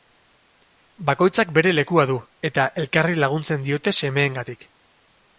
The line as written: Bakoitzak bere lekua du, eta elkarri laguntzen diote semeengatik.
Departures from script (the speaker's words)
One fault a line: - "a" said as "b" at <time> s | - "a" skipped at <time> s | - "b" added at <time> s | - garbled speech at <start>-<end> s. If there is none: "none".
none